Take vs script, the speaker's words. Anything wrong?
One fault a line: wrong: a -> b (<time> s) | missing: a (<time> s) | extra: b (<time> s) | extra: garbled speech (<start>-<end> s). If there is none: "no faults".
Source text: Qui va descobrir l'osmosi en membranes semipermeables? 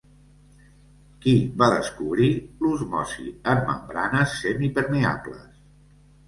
no faults